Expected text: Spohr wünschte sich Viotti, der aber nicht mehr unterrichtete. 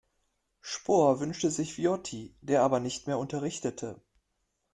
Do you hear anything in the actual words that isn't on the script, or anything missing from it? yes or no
no